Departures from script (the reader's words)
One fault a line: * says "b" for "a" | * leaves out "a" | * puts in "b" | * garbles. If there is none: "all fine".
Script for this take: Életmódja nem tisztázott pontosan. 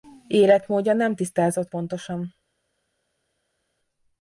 all fine